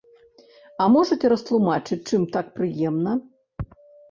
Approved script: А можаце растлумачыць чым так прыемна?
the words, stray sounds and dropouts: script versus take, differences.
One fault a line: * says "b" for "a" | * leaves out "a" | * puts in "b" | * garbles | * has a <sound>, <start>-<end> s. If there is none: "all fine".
all fine